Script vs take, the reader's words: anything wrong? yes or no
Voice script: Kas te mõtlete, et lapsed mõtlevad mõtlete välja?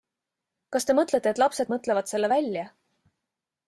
yes